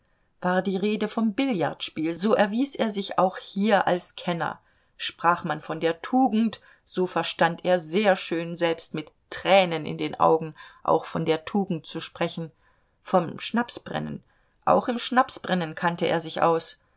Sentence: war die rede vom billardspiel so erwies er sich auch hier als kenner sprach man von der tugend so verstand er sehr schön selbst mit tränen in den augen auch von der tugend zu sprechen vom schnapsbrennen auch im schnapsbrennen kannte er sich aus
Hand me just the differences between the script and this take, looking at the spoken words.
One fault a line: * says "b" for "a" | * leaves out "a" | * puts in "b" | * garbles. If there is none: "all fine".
all fine